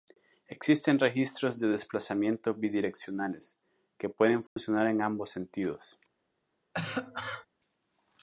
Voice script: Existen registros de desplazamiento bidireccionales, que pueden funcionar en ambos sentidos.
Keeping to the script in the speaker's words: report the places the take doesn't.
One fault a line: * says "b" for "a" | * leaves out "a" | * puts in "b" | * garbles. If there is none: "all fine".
all fine